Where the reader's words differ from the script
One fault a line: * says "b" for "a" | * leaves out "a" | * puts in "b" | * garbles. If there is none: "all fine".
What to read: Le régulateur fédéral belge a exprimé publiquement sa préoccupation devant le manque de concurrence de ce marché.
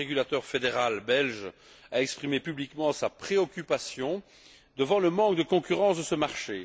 all fine